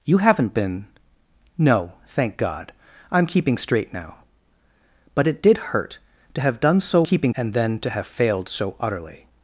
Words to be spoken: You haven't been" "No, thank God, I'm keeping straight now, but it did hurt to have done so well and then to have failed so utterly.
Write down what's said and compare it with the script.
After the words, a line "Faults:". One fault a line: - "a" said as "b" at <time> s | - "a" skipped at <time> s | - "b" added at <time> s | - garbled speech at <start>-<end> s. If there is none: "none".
You haven't been" "No, thank God, I'm keeping straight now, but it did hurt to have done so keeping and then to have failed so utterly.
Faults:
- "well" said as "keeping" at 7.0 s